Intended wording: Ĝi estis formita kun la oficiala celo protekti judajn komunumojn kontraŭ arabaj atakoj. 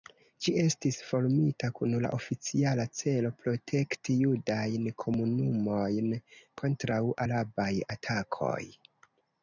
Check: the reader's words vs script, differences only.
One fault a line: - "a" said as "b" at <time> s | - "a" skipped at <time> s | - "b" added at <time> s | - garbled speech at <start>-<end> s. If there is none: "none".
none